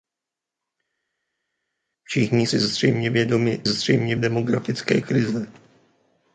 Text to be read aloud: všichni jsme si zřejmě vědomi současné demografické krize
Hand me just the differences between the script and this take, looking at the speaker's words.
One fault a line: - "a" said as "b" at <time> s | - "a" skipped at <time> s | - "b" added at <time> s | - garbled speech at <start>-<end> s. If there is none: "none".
- "jsme" skipped at 2.5 s
- "současné" said as "zřejmě" at 3.6 s